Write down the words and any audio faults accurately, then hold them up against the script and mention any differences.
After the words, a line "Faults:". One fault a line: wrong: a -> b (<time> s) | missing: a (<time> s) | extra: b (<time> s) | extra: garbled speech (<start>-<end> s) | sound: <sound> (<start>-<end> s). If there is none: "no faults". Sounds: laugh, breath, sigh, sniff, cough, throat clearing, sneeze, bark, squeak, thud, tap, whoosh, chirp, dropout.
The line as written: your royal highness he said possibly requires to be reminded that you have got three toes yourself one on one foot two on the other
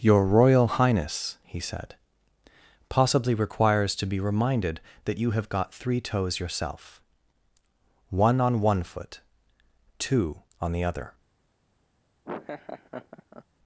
your royal highness he said possibly requires to be reminded that you have got three toes yourself one on one foot two on the other
Faults:
sound: laugh (12.2-13.4 s)